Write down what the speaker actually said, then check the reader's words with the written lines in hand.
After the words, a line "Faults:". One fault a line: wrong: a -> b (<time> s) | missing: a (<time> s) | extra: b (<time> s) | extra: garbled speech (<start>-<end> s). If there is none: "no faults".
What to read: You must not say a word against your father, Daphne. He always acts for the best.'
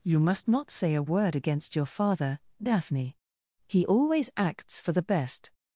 You must not say a word against your father, Daphne. He always acts for the best.'
Faults:
no faults